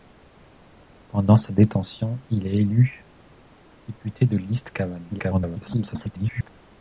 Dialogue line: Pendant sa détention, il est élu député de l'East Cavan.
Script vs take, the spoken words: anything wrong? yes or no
yes